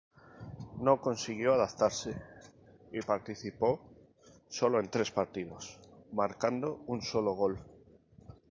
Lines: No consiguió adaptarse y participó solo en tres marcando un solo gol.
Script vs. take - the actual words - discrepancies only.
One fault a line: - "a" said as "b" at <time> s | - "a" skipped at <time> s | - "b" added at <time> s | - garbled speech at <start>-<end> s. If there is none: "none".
- "partidos" added at 5.1 s